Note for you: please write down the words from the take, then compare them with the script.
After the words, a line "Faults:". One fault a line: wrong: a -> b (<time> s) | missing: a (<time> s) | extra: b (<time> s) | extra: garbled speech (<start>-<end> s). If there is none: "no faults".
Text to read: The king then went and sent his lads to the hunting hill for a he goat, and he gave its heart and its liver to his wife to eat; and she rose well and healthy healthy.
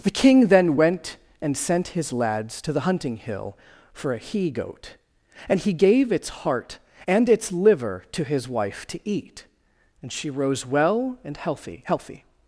The king then went and sent his lads to the hunting hill for a he goat, and he gave its heart and its liver to his wife to eat; and she rose well and healthy healthy.
Faults:
no faults